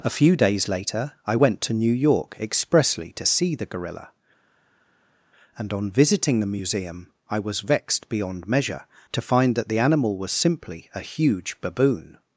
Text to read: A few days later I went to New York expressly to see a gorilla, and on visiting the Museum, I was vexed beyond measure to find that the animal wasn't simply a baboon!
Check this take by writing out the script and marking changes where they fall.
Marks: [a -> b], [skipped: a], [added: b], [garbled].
A few days later I went to New York expressly to see [a -> the] gorilla, and on visiting the Museum, I was vexed beyond measure to find that the animal [wasn't -> was] simply a [added: huge] baboon!